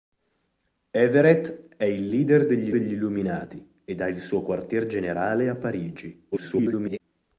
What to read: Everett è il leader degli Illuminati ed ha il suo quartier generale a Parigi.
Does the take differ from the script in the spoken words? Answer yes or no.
yes